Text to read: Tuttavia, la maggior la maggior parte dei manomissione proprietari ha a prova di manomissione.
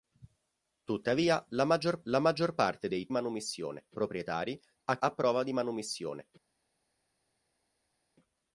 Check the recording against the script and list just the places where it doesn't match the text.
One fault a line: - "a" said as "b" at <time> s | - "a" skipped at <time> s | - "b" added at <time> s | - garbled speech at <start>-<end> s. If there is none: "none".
none